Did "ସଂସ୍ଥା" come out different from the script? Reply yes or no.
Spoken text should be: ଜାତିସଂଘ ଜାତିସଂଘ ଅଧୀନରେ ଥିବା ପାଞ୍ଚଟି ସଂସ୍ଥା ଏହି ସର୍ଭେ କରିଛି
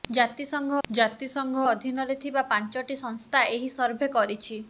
no